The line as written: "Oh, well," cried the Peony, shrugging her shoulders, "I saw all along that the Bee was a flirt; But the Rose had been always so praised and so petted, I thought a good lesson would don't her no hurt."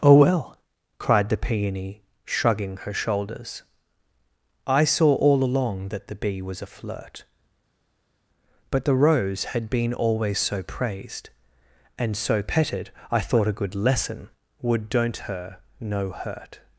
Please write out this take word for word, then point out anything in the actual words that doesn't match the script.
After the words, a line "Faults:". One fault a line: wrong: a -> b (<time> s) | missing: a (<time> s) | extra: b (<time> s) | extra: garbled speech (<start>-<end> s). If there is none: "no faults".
"Oh, well," cried the Peony, shrugging her shoulders, "I saw all along that the Bee was a flirt; But the Rose had been always so praised and so petted, I thought a good lesson would don't her no hurt."
Faults:
no faults